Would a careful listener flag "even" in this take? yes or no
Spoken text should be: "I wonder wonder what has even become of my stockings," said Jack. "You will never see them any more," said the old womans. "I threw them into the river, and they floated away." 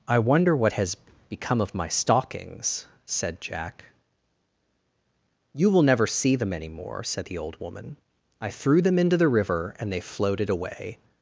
yes